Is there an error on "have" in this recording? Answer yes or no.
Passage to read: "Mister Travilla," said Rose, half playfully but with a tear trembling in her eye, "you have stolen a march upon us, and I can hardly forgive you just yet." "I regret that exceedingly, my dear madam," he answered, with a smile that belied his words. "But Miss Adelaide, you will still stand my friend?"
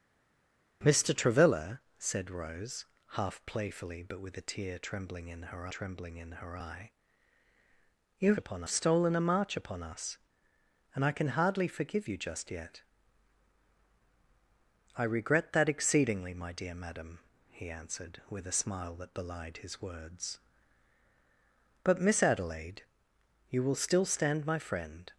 yes